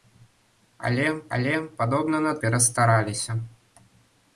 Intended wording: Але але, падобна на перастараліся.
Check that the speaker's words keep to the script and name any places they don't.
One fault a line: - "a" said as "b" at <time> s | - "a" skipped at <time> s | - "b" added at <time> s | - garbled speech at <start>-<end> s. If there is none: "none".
none